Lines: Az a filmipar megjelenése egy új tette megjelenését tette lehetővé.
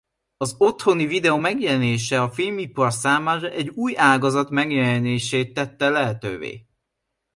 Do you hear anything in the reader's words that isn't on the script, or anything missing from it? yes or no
yes